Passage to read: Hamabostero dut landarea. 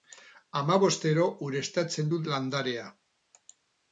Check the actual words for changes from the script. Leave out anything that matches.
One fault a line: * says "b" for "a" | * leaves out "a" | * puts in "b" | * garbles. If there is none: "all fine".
* puts in "ureztatzen"